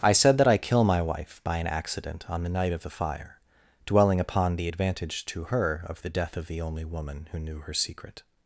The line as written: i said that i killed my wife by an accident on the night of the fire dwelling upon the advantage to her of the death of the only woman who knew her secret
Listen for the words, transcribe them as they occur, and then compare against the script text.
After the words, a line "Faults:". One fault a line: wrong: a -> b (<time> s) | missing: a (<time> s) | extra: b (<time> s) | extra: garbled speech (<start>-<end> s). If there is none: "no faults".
i said that i kill my wife by an accident on the night of the fire dwelling upon the advantage to her of the death of the only woman who knew her secret
Faults:
wrong: killed -> kill (0.6 s)